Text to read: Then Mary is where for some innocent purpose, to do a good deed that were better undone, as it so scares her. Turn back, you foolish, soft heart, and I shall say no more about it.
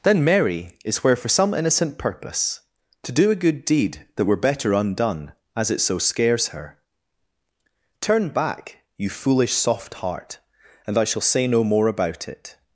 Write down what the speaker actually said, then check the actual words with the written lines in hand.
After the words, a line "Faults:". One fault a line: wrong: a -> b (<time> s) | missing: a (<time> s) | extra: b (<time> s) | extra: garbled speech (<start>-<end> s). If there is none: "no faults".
Then Mary is where for some innocent purpose, to do a good deed that were better undone, as it so scares her. Turn back, you foolish, soft heart, and I shall say no more about it.
Faults:
no faults